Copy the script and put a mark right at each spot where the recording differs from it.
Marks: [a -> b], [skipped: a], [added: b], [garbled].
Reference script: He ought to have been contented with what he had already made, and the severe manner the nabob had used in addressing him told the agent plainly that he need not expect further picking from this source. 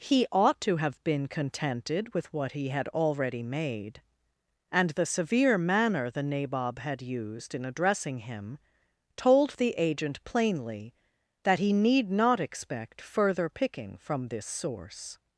He ought to have been contented with what he had already made, and the severe manner the nabob had used in addressing him told the agent plainly that he need not expect further picking from this source.